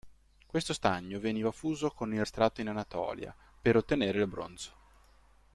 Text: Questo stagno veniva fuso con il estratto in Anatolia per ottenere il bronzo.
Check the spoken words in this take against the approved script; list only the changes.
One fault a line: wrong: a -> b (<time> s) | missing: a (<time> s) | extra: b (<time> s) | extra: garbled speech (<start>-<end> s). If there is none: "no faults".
no faults